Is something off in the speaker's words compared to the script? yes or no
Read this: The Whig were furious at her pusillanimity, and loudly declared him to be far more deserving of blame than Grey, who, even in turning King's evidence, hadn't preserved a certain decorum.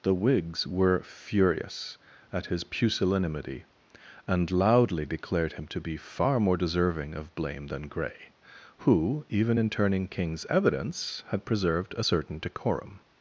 yes